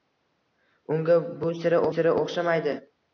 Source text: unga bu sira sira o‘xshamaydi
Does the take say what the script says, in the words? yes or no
yes